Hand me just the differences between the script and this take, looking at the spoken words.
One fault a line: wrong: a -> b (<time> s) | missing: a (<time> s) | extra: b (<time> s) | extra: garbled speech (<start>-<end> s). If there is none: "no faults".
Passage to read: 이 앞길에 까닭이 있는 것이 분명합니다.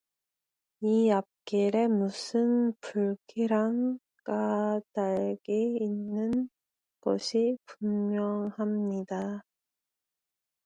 extra: 무슨 불길한 (1.9 s)